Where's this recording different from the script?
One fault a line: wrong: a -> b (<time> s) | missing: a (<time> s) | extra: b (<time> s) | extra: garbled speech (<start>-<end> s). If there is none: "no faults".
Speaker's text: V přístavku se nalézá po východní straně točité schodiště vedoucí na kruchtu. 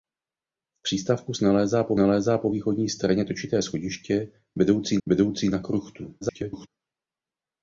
extra: nalézá po (2.0 s)
extra: vedoucí (5.0 s)
extra: garbled speech (6.2-6.7 s)